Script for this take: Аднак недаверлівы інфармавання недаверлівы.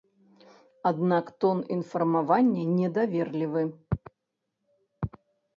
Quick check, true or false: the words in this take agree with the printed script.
false